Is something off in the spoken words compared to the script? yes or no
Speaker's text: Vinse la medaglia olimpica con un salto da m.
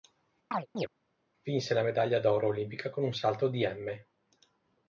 yes